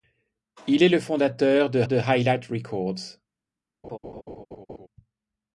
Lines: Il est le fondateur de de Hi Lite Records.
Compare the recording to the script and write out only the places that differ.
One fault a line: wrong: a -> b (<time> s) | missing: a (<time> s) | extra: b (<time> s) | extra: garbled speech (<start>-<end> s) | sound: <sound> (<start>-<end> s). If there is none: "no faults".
sound: laugh (3.8-4.9 s)